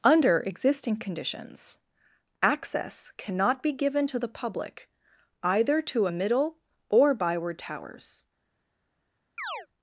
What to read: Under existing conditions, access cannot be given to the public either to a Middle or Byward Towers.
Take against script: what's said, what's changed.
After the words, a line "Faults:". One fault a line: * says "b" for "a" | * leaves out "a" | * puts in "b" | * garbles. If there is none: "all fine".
Under existing conditions, access cannot be given to the public either to a Middle or Byward Towers.
Faults:
all fine